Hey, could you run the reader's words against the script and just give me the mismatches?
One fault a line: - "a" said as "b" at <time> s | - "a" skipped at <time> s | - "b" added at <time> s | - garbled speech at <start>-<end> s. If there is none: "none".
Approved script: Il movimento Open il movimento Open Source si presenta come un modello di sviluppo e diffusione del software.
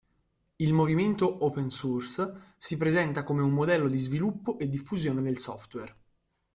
- "il movimento Open" skipped at 1.7 s